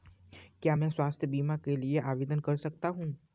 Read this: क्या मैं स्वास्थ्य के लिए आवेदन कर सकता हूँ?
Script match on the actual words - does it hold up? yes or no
no